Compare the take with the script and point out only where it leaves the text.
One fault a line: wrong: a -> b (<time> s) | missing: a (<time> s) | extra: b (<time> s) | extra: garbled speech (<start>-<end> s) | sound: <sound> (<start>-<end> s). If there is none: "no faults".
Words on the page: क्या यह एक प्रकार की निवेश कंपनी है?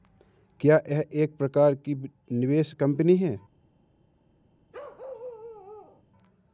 sound: bark (4.7-6.0 s)